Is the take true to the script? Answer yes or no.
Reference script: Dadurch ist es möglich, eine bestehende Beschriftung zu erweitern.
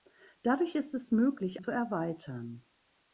no